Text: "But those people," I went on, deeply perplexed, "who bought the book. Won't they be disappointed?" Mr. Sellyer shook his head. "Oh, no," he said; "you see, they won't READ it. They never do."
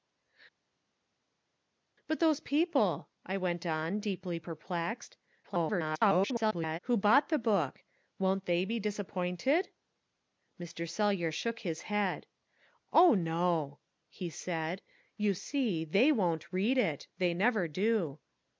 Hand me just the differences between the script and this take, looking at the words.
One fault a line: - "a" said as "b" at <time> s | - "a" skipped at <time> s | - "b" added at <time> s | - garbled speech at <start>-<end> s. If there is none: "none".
- garbled speech at 5.4-6.8 s